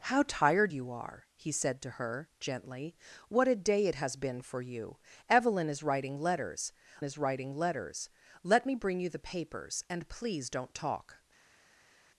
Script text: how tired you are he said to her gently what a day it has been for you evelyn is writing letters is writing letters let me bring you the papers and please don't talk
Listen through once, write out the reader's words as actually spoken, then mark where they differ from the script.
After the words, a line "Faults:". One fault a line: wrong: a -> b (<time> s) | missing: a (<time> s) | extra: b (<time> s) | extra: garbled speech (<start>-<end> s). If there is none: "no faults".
how tired you are he said to her gently what a day it has been for you evelyn is writing letters is writing letters let me bring you the papers and please don't talk
Faults:
no faults